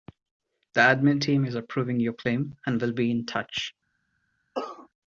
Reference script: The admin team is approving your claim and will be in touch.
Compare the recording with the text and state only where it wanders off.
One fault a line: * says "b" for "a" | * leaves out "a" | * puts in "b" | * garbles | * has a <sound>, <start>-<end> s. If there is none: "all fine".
* has a cough, 4.5-4.9 s